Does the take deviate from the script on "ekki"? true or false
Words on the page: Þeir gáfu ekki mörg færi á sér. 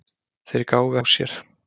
true